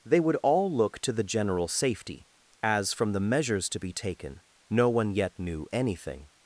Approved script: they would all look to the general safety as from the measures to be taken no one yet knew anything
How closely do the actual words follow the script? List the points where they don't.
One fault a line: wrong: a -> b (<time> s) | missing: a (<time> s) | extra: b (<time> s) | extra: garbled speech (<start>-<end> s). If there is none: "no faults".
no faults